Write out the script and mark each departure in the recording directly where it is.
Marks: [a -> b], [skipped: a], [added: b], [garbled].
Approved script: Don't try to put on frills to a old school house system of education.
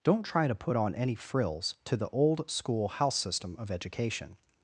Don't try to put on [added: any] frills to [a -> the] old school house system of education.